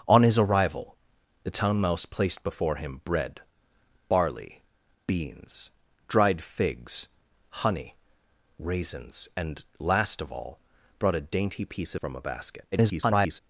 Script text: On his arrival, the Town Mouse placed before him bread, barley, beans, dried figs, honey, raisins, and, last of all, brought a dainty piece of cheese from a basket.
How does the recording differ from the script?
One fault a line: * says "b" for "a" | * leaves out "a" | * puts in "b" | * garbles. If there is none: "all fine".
* leaves out "of cheese"
* garbles